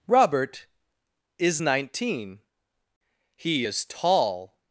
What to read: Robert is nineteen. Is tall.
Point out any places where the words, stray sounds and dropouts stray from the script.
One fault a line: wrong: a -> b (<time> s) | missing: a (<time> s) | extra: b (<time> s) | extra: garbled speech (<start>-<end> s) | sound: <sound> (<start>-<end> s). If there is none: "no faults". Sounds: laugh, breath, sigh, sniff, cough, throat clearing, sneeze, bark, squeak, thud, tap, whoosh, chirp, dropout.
extra: He (3.4 s)